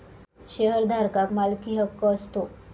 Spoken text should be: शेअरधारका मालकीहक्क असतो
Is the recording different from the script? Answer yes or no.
no